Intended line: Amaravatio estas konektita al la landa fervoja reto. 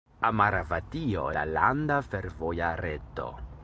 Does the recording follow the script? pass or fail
fail